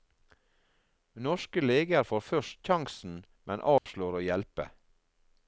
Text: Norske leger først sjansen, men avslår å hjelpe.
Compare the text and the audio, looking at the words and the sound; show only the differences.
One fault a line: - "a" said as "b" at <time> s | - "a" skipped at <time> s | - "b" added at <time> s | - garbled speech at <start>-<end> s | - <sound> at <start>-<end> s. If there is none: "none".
- "får" added at 2.1 s
- dropout at 3.8-3.9 s